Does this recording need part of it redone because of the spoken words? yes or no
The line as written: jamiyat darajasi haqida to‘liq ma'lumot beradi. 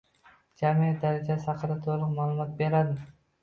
no